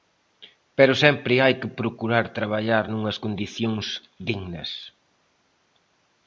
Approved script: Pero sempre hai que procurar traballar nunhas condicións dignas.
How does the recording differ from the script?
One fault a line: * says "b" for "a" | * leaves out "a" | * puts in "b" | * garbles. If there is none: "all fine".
all fine